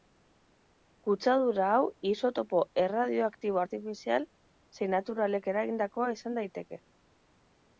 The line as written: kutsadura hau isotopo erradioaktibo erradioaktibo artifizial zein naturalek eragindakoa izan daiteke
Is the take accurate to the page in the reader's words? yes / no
no